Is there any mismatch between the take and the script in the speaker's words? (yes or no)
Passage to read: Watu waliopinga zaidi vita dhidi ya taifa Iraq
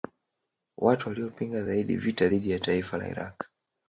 yes